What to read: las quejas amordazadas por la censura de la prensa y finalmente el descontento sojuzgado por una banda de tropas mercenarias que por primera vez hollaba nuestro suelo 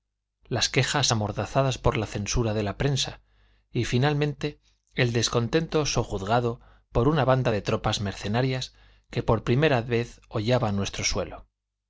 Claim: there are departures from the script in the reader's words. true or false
false